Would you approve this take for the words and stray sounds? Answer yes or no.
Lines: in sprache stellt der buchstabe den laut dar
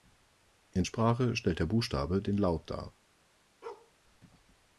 no